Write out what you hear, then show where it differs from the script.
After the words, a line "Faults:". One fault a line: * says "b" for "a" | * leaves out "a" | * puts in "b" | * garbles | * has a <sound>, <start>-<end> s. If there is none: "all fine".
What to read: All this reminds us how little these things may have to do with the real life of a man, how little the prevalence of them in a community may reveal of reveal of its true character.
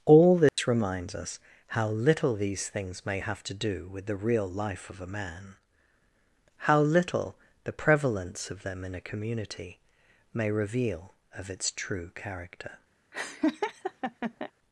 All this reminds us how little these things may have to do with the real life of a man, how little the prevalence of them in a community may reveal of its true character.
Faults:
* has a dropout, 0.5-0.6 s
* leaves out "reveal of"
* has a laugh, 13.1-14.5 s